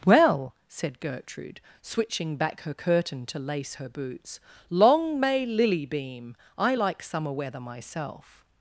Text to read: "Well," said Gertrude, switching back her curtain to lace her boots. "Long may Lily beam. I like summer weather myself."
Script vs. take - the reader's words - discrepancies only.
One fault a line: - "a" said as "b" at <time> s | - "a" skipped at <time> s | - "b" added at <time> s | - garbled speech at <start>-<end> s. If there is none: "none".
none